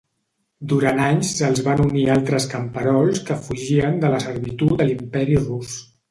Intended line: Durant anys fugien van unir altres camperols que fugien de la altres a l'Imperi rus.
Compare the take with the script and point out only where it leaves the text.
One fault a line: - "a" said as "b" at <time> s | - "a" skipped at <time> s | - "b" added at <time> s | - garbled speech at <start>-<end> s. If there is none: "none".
- "fugien" said as "se'ls" at 1.4 s
- "altres" said as "servitud" at 4.3 s